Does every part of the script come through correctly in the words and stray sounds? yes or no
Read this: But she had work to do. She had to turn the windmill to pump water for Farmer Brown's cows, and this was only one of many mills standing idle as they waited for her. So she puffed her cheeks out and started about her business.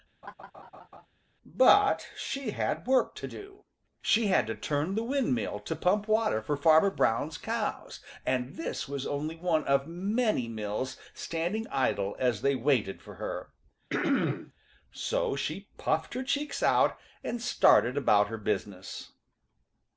no